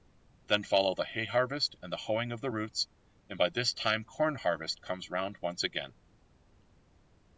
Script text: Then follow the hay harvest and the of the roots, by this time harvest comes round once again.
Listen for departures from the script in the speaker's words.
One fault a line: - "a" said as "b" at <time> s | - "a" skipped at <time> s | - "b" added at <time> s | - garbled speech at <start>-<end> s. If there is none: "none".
- "hoeing" added at 2.0 s
- "and" added at 3.3 s
- "corn" added at 4.0 s